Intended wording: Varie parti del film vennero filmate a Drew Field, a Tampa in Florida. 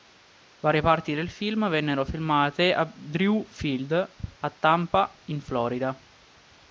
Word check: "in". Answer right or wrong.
right